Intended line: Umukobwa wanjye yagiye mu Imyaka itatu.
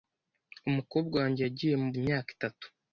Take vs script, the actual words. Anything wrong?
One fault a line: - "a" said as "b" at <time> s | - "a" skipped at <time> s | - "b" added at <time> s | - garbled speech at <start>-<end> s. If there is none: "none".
none